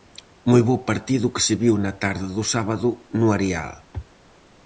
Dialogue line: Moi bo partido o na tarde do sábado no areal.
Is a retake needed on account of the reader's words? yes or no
yes